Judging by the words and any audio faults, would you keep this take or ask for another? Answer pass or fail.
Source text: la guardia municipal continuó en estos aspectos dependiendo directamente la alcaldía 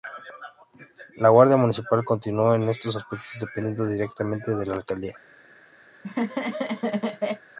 fail